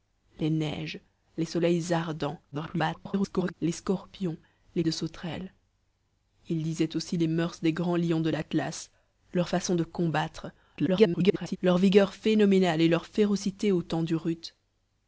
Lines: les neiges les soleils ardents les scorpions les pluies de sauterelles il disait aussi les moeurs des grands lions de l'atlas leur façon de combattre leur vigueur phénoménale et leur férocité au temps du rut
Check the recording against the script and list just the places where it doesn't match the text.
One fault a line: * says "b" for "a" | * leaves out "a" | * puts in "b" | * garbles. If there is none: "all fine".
* garbles
* leaves out "pluies"
* garbles